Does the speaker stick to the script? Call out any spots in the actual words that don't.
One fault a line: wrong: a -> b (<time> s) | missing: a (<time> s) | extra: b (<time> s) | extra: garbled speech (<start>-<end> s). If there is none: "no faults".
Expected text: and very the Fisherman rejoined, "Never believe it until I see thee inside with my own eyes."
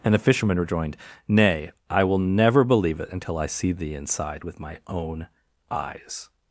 missing: very (0.1 s)
extra: Nay I will (1.3 s)